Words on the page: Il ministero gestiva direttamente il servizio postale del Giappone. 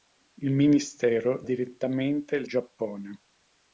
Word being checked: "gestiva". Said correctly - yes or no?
no